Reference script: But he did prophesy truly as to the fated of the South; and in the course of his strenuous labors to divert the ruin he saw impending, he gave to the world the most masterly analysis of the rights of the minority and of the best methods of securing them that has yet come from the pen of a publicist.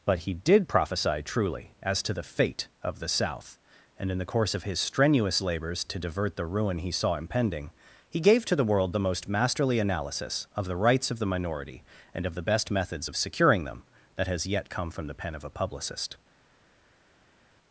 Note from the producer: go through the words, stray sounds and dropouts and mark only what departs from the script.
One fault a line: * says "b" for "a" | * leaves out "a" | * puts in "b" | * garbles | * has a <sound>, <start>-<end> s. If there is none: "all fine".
* says "fate" for "fated"